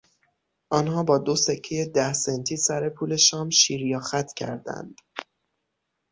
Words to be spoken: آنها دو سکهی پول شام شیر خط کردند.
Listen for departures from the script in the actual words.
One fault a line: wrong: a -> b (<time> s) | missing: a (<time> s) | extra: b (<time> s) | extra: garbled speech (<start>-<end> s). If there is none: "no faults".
extra: با (1.0 s)
extra: ده سنتی سر (1.8 s)
extra: یا (3.9 s)